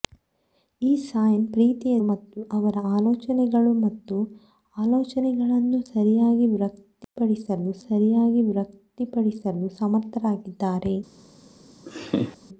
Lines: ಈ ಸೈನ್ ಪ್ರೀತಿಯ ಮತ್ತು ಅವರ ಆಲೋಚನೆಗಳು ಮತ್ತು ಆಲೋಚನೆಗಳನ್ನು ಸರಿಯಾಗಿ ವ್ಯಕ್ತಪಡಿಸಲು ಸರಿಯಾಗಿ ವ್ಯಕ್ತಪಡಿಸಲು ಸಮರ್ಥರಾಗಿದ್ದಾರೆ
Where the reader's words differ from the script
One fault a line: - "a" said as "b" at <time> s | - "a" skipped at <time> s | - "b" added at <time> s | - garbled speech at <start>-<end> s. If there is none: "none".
none